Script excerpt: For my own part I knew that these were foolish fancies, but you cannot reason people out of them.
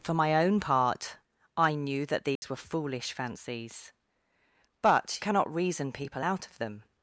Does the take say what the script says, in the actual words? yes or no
no